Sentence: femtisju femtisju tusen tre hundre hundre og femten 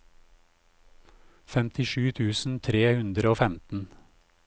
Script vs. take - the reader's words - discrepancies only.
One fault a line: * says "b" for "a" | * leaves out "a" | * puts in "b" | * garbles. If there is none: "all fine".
* leaves out "femtisju"
* leaves out "hundre"